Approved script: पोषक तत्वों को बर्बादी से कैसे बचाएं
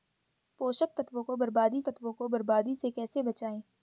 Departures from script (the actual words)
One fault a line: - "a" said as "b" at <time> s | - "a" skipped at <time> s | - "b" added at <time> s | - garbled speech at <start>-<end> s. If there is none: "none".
- "तत्वों को बर्बादी" added at 1.9 s